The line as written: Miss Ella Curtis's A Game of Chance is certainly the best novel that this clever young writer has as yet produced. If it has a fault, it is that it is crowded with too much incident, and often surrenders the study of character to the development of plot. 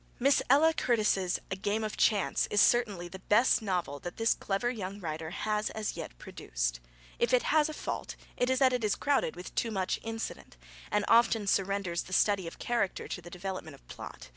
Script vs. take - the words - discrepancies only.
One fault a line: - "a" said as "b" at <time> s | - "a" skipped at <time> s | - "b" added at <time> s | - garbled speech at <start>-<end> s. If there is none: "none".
none